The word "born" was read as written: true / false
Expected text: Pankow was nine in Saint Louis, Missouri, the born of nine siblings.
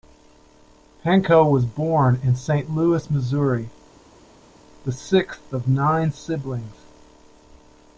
false